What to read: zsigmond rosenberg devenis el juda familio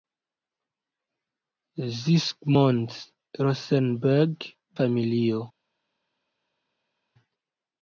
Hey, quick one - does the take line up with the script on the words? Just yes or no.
no